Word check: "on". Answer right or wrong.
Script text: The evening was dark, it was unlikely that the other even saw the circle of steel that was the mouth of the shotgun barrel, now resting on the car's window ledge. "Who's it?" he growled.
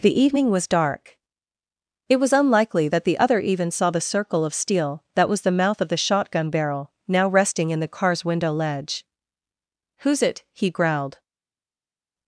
wrong